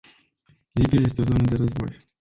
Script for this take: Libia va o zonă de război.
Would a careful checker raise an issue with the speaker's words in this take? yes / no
yes